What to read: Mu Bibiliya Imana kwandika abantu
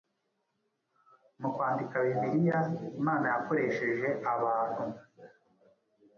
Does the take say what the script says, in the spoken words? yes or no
no